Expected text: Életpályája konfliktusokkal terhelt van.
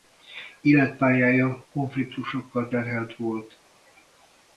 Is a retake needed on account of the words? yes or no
yes